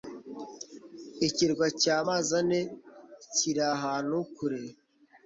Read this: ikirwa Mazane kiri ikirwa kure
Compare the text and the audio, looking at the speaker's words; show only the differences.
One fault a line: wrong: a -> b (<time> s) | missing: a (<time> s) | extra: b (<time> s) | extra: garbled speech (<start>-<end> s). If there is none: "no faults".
extra: cya (1.8 s)
wrong: ikirwa -> ahantu (3.7 s)